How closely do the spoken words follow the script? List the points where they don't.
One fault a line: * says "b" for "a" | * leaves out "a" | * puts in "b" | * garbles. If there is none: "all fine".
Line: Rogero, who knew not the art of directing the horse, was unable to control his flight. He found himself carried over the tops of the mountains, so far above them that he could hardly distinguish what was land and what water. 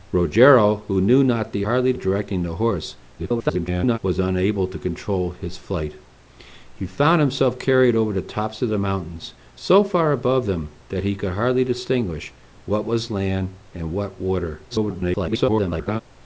* says "hardly" for "art"
* garbles
* garbles